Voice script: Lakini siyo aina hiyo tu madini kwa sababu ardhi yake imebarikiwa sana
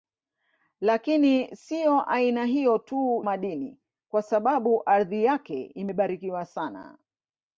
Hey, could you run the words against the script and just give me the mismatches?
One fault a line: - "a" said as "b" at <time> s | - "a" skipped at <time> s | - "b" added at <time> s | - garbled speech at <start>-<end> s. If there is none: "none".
none